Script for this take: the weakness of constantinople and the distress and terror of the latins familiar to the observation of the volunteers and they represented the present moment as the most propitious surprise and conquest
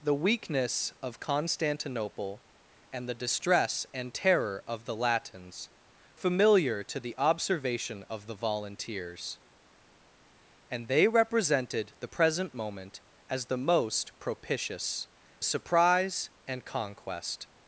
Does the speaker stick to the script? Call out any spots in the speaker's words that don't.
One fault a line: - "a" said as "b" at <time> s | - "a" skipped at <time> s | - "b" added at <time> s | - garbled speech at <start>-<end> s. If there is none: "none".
none